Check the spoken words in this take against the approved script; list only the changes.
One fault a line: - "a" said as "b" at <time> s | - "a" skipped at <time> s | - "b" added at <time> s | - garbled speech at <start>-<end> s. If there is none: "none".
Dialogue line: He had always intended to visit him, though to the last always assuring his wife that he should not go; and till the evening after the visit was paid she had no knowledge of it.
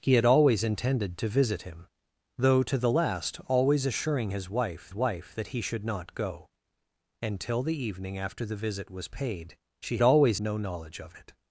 - "wife" added at 4.9 s
- "had" said as "always" at 10.0 s